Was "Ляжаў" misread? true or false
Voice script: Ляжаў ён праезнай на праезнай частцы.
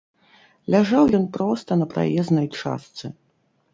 false